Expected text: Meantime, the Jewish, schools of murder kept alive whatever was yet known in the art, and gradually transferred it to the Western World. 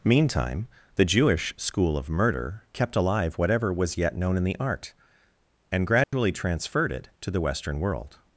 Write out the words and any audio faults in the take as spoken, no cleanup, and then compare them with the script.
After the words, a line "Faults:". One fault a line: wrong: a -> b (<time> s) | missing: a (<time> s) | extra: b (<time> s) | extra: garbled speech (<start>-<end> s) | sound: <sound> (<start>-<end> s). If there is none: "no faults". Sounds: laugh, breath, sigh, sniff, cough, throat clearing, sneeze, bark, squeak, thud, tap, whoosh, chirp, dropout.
Meantime, the Jewish, school of murder kept alive whatever was yet known in the art, and gradually transferred it to the Western World.
Faults:
wrong: schools -> school (1.6 s)
sound: dropout (6.0-6.1 s)